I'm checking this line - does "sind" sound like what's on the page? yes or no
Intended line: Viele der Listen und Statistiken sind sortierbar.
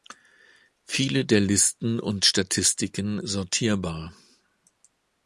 no